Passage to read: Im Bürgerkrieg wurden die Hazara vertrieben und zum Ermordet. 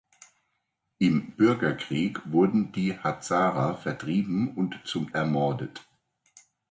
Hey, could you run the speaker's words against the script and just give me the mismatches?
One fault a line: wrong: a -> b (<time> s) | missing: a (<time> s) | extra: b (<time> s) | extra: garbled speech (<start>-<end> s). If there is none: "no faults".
no faults